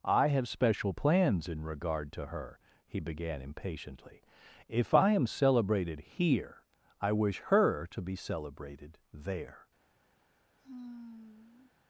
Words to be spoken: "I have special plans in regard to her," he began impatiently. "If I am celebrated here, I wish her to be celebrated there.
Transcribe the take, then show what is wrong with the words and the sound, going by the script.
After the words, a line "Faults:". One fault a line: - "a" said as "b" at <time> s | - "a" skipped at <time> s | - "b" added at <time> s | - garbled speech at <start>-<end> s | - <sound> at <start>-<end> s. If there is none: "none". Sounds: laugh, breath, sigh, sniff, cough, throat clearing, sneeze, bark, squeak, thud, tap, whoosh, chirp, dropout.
"I have special plans in regard to her," he began impatiently. "If I am celebrated here, I wish her to be celebrated there.
Faults:
- sigh at 10.6-11.7 s